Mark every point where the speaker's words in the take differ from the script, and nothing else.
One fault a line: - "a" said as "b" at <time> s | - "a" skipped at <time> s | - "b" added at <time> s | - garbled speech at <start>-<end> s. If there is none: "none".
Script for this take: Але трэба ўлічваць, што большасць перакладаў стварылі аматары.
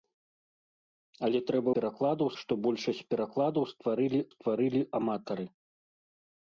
- "ўлічваць" said as "перакладаў" at 1.8 s
- "стварылі" added at 4.3 s